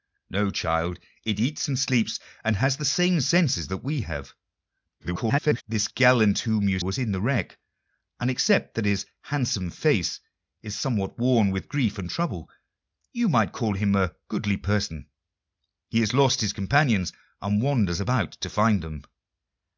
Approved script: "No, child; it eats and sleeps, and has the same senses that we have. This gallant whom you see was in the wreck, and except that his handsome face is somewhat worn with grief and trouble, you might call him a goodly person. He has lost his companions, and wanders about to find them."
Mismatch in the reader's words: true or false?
true